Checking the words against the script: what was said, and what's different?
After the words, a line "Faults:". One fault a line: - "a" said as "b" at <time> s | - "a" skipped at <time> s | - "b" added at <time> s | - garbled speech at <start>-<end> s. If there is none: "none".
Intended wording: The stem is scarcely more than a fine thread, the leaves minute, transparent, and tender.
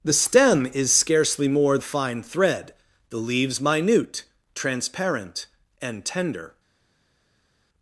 The stem is scarcely more a fine thread, the leaves minute, transparent, and tender.
Faults:
- "than" skipped at 1.8 s